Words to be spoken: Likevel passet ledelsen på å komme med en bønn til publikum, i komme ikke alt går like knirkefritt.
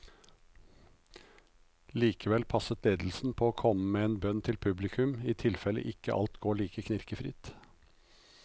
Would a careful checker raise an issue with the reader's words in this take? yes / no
yes